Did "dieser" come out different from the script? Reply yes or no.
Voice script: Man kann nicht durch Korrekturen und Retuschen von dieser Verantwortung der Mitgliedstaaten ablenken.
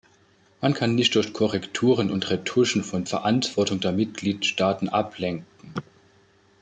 yes